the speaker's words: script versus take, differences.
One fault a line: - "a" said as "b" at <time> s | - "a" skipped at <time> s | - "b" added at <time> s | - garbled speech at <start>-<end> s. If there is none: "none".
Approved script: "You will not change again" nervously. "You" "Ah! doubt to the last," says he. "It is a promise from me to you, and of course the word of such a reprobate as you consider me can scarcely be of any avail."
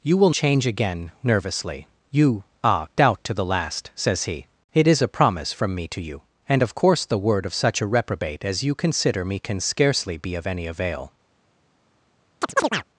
- "not" skipped at 0.3 s